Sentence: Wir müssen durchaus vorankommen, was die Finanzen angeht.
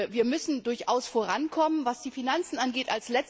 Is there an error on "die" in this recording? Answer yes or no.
no